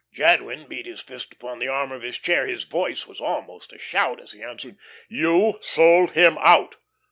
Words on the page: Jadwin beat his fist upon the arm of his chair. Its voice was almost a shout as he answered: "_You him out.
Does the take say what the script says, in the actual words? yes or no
no